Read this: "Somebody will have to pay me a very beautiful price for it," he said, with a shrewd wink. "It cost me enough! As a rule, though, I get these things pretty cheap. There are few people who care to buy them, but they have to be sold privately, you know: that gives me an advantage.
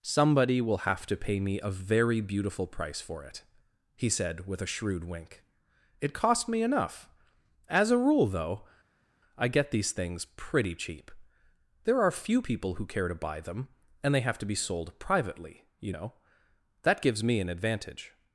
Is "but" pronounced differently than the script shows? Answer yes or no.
yes